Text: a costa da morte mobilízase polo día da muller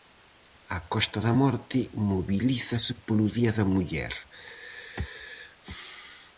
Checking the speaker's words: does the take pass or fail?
pass